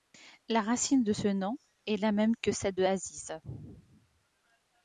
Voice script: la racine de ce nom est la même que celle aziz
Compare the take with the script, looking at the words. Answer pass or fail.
fail